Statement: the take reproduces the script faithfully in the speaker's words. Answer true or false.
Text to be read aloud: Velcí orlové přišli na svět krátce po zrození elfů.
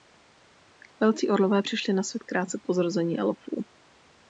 true